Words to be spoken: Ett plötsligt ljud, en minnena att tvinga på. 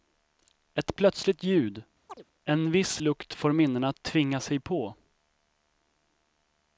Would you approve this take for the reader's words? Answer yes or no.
no